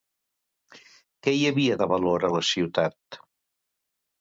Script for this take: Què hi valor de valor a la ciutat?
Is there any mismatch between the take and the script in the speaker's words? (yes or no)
yes